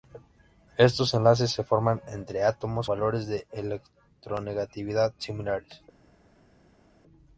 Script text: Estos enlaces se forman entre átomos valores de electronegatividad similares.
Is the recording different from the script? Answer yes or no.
no